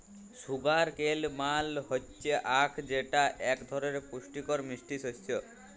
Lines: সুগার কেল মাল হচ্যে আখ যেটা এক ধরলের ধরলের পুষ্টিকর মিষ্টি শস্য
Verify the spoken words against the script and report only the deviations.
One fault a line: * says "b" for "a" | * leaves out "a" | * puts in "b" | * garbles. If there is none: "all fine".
* leaves out "ধরলের"